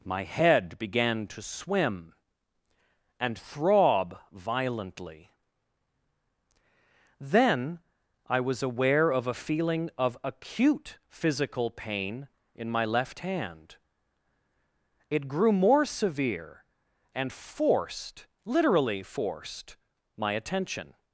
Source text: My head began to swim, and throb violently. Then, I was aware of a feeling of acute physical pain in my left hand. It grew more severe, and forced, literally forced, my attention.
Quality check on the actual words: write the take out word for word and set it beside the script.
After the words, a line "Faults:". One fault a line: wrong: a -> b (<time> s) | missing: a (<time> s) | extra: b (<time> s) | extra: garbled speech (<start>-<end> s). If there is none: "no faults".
My head began to swim, and throb violently. Then, I was aware of a feeling of acute physical pain in my left hand. It grew more severe, and forced, literally forced, my attention.
Faults:
no faults